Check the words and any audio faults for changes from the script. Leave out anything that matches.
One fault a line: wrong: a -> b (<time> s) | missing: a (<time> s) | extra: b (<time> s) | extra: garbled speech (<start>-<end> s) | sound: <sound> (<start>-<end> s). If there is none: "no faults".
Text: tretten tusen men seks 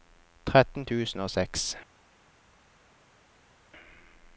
wrong: men -> og (1.2 s)